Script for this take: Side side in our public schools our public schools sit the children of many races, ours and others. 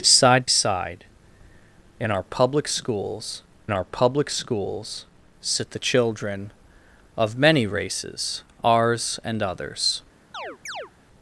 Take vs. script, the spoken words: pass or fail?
pass